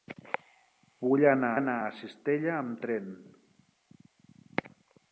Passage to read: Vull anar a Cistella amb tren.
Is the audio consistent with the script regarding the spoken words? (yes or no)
no